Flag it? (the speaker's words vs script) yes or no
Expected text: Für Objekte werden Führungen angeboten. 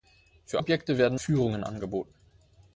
no